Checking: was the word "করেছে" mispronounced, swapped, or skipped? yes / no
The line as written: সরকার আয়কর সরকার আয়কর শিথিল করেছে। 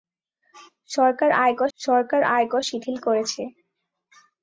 no